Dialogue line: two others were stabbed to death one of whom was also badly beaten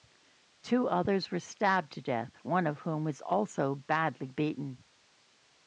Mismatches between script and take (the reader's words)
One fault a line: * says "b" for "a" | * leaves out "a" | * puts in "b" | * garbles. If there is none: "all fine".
all fine